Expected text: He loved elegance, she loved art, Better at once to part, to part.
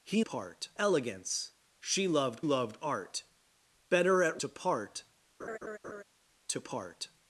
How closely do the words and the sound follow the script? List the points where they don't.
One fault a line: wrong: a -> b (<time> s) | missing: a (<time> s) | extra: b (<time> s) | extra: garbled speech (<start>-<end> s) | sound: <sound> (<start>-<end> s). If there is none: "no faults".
wrong: loved -> part (0.2 s)
extra: loved (2.4 s)
missing: once (4.4 s)
sound: laugh (5.4-6.0 s)